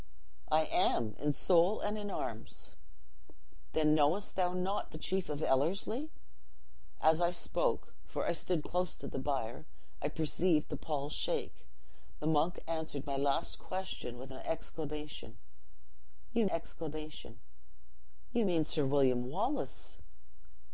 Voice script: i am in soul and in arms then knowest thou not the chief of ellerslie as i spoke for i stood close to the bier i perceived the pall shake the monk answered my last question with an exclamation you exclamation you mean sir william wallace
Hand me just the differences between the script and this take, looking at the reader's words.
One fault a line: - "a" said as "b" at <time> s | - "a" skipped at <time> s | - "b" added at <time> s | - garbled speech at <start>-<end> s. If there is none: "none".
none